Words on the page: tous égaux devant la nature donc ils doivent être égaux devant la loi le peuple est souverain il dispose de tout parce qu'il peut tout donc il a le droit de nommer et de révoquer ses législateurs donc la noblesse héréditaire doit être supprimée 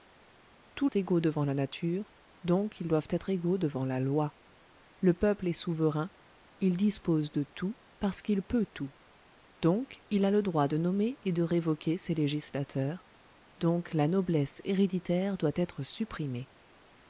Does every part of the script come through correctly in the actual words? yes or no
yes